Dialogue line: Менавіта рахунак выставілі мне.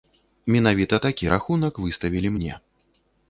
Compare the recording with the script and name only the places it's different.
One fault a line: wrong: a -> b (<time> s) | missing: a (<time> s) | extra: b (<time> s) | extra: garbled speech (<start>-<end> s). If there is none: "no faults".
extra: такі (1.0 s)